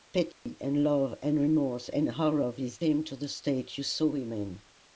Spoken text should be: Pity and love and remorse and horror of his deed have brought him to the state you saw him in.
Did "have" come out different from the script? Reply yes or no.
yes